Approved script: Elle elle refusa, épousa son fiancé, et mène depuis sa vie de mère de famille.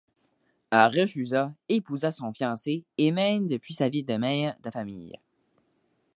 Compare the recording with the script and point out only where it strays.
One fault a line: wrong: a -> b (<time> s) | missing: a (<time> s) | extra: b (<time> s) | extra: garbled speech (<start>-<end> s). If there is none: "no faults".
missing: elle (1.0 s)